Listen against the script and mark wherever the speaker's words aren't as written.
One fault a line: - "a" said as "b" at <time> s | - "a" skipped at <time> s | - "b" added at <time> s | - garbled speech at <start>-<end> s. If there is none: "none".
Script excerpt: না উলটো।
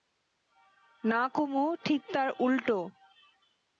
- "কুমু ঠিক তার" added at 1.3 s